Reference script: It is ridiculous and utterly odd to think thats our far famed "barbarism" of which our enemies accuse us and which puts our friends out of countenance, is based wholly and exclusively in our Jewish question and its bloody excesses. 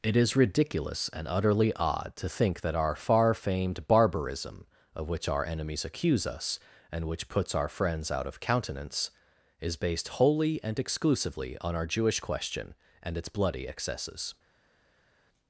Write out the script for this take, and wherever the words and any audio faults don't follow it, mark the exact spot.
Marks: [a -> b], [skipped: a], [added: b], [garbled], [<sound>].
It is ridiculous and utterly odd to think [thats -> that] our far famed "barbarism" of which our enemies accuse us and which puts our friends out of countenance, is based wholly and exclusively [in -> on] our Jewish question and its bloody excesses.